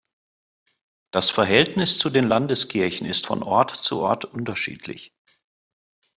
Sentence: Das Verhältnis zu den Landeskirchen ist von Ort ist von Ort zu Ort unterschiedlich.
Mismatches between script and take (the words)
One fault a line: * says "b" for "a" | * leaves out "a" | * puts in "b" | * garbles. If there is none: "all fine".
* leaves out "ist von Ort"